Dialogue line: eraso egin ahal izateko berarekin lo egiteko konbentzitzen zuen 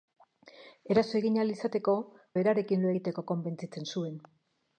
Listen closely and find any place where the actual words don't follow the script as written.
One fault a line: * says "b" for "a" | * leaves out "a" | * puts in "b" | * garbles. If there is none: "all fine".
all fine